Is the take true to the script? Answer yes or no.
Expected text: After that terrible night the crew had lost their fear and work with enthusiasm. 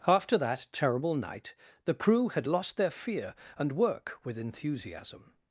yes